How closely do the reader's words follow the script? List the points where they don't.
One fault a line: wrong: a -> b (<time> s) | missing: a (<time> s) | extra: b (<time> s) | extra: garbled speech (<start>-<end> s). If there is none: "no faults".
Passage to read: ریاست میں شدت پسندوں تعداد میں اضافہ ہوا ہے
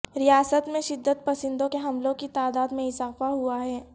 extra: کے حملوں کی (1.7 s)